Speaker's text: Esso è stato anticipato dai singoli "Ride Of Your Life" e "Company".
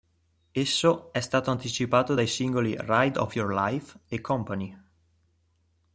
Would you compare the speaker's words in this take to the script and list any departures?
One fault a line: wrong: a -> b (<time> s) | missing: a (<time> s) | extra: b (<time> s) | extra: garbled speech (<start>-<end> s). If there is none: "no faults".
no faults